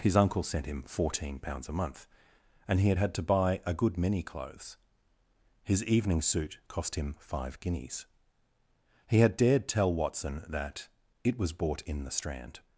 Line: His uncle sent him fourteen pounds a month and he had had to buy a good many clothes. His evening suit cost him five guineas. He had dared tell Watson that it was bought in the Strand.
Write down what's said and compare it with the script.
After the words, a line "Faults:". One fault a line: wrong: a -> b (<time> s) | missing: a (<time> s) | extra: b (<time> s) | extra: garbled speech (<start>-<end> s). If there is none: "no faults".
His uncle sent him fourteen pounds a month and he had had to buy a good many clothes. His evening suit cost him five guineas. He had dared tell Watson that it was bought in the Strand.
Faults:
no faults